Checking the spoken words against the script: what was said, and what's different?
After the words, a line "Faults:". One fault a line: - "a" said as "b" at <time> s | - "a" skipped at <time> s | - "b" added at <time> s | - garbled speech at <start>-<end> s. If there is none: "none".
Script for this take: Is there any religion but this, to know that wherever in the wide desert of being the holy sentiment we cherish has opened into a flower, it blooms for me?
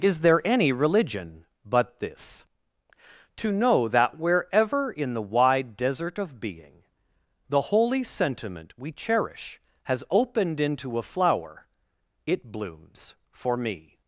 Is there any religion but this, to know that wherever in the wide desert of being the holy sentiment we cherish has opened into a flower, it blooms for me?
Faults:
none